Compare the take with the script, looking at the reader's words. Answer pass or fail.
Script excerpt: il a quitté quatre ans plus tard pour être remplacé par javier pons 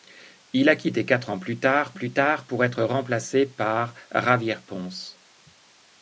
fail